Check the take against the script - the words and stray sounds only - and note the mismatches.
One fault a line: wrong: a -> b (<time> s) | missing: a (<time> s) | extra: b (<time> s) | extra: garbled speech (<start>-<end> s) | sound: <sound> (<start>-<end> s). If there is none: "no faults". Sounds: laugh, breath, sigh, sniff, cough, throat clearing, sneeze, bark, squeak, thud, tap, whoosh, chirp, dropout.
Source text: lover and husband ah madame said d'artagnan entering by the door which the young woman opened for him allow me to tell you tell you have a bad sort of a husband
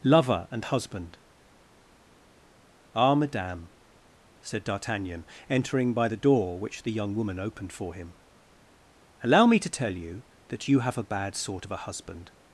wrong: tell -> that (10.5 s)